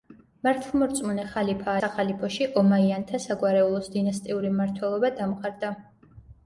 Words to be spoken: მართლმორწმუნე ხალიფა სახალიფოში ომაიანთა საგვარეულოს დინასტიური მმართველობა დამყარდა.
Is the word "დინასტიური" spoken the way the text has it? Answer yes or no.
yes